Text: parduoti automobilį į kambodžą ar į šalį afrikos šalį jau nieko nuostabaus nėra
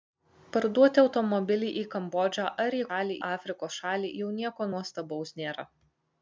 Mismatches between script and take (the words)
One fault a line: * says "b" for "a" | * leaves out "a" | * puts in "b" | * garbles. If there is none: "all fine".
all fine